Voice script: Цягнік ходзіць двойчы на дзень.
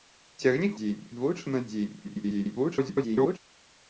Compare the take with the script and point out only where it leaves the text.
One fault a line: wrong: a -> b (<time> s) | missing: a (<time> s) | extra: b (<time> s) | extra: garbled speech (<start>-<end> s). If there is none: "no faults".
wrong: ходзіць -> дзень (0.8 s)
extra: garbled speech (2.0-3.4 s)